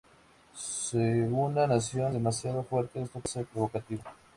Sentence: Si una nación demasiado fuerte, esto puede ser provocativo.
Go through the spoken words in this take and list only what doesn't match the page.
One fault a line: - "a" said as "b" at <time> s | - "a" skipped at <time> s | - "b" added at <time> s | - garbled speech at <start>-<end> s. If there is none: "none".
none